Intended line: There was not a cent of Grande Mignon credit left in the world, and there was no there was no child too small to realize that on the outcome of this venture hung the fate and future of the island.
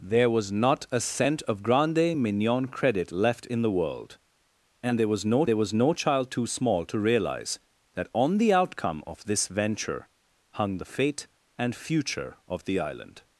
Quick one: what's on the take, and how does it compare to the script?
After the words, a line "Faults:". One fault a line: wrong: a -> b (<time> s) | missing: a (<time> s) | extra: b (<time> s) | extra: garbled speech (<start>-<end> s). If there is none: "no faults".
There was not a cent of Grande Mignon credit left in the world, and there was no there was no child too small to realize that on the outcome of this venture hung the fate and future of the island.
Faults:
no faults